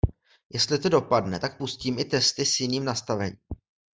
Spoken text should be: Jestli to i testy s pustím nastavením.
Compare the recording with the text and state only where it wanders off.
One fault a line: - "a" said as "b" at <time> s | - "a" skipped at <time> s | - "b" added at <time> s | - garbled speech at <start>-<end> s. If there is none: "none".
- "dopadne tak pustím" added at 0.9 s
- "pustím" said as "jiným" at 2.6 s